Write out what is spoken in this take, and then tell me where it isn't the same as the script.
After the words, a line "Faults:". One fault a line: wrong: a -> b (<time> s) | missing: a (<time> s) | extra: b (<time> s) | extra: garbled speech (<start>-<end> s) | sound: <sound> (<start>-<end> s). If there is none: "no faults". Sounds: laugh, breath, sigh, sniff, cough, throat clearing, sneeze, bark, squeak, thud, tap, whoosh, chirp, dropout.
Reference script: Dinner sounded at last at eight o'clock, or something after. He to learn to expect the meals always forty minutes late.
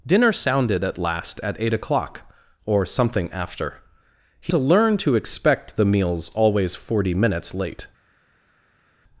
Dinner sounded at last at eight o'clock, or something after. He to learn to expect the meals always forty minutes late.
Faults:
no faults